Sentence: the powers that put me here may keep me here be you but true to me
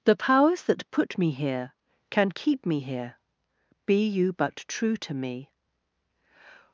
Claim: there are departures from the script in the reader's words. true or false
true